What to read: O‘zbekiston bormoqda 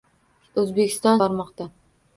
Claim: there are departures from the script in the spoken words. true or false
false